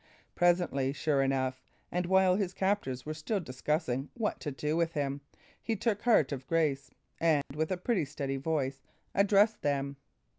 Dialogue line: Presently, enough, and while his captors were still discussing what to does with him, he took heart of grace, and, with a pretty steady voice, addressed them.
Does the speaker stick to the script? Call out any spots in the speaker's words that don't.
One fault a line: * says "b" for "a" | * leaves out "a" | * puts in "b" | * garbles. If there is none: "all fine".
* puts in "sure"
* says "do" for "does"